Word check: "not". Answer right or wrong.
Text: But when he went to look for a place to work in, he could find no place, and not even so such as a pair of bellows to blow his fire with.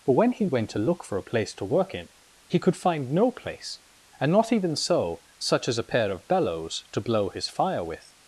right